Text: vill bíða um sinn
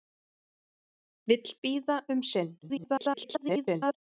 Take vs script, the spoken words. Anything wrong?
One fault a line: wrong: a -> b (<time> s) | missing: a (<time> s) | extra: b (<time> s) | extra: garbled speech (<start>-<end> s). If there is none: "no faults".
extra: garbled speech (2.6-3.9 s)